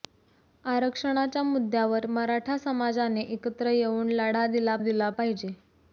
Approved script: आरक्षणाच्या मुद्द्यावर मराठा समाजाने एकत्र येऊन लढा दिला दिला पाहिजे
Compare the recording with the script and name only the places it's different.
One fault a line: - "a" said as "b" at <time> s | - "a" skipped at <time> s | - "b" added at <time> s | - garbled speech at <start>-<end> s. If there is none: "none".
none